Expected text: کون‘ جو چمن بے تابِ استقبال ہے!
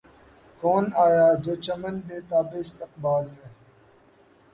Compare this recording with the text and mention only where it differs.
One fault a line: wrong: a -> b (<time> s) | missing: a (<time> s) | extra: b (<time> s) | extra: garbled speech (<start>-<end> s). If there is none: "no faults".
extra: آیا (1.1 s)